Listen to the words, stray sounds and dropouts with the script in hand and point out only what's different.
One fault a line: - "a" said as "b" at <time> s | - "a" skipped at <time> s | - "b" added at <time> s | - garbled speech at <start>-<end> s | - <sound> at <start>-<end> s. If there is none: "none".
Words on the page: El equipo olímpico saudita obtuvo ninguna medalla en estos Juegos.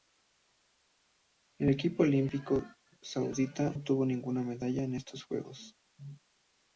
none